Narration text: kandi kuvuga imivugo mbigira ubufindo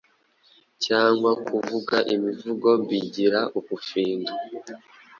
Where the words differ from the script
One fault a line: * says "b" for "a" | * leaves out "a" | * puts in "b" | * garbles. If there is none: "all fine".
* says "cyangwa" for "kandi"